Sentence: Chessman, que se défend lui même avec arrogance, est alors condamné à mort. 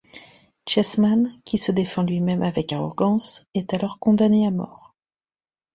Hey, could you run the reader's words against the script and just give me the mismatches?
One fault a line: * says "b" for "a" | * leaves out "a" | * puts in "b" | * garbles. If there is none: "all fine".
* says "qui" for "que"